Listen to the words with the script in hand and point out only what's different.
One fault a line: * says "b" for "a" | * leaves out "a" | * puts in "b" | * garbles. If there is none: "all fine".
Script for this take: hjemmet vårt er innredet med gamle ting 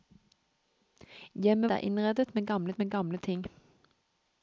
* leaves out "vårt"
* puts in "med gamle"